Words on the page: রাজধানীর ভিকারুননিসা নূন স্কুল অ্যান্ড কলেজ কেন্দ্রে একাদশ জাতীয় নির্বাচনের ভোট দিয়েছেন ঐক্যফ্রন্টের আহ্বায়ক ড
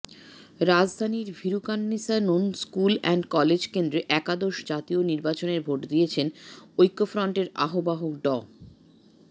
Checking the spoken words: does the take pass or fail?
pass